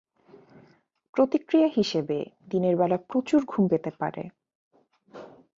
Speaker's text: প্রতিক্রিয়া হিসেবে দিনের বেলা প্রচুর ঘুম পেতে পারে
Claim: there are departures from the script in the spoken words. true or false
false